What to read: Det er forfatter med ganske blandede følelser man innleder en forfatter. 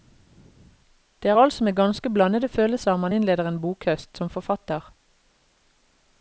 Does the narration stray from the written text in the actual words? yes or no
yes